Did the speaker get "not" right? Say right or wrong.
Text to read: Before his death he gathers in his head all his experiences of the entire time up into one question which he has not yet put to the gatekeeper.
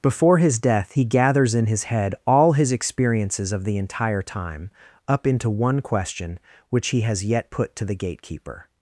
wrong